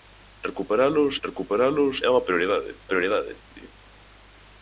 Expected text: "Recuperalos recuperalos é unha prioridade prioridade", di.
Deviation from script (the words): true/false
false